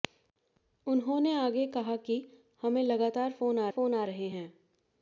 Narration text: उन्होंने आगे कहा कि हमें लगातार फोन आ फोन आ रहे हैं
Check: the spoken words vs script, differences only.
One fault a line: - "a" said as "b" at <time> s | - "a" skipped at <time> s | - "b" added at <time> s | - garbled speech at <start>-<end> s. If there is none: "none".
none